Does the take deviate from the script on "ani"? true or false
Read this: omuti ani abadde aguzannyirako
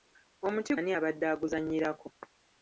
false